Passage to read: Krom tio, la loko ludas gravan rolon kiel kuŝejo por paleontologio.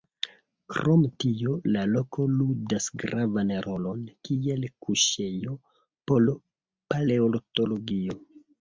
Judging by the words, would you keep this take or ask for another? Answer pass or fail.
pass